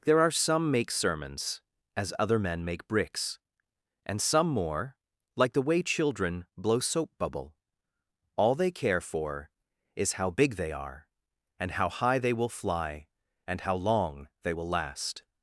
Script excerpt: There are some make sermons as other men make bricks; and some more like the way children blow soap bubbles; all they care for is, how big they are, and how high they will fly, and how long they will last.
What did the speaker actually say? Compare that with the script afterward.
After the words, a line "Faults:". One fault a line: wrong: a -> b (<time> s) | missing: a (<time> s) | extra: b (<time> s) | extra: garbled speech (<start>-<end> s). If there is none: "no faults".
There are some make sermons as other men make bricks; and some more like the way children blow soap bubble; all they care for is, how big they are, and how high they will fly, and how long they will last.
Faults:
wrong: bubbles -> bubble (7.2 s)